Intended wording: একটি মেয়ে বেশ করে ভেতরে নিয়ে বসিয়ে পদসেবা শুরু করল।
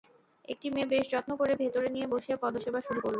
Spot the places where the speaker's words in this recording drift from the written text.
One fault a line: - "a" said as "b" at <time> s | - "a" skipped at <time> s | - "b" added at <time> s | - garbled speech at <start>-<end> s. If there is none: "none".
- "যত্ন" added at 1.1 s